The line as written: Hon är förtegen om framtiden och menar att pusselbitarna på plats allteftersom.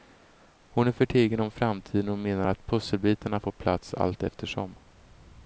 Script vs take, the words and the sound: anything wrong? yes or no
no